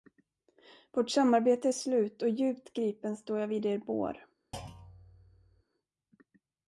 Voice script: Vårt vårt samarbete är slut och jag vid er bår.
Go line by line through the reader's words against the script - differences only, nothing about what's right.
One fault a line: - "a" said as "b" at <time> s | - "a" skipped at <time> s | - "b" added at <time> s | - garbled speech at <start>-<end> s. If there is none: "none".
- "vårt" skipped at 1.1 s
- "djupt gripen står" added at 2.3 s